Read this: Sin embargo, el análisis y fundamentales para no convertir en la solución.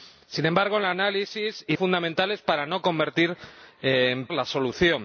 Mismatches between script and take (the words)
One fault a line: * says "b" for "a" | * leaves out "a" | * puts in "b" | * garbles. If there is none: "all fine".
all fine